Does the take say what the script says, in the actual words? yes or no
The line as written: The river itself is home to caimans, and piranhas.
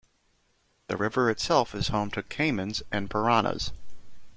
yes